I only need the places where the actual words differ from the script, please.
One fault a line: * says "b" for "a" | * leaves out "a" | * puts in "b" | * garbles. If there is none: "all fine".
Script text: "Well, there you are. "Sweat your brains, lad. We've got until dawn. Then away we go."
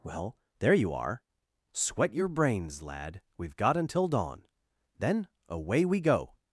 all fine